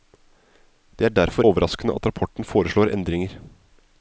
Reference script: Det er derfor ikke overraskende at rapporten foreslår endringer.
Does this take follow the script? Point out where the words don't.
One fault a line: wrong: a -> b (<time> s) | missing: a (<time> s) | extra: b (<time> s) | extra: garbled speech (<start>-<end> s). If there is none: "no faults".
missing: ikke (1.4 s)